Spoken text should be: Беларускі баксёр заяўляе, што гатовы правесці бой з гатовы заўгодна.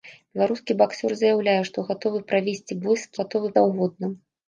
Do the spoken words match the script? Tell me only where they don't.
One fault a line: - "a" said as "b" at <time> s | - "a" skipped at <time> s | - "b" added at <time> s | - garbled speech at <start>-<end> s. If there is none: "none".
none